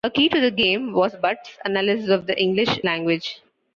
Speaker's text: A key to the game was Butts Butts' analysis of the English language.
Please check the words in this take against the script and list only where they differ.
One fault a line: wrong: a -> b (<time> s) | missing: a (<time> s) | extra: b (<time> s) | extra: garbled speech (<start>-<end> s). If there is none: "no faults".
missing: Butts (1.6 s)